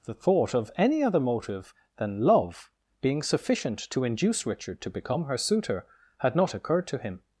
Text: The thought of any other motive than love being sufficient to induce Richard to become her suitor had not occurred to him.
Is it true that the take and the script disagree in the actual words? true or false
false